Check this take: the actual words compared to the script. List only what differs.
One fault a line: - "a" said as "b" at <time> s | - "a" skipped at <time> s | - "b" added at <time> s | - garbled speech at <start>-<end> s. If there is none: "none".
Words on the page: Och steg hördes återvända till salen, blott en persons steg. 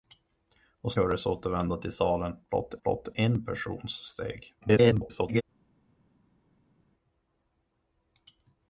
- "steg" skipped at 0.9 s
- "blott" added at 2.8 s
- garbled speech at 4.6-5.4 s